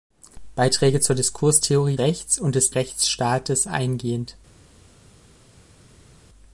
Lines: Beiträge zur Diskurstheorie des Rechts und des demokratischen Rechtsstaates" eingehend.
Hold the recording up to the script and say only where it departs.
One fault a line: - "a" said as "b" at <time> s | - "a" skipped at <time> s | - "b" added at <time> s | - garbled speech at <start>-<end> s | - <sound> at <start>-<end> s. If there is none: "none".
- "des" skipped at 2.0 s
- "demokratischen" skipped at 2.7 s